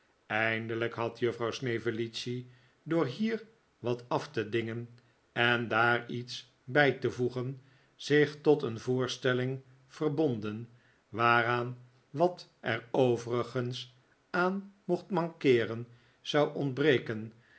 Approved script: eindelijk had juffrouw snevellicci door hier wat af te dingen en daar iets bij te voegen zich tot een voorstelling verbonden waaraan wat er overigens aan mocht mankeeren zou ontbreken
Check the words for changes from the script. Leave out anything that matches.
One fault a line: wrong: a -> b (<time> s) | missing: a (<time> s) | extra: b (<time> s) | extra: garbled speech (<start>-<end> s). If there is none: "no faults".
no faults